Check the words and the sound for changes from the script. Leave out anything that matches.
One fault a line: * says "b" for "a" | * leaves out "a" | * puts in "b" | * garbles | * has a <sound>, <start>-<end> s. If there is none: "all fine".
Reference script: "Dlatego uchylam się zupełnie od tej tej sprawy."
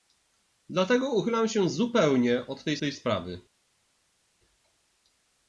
all fine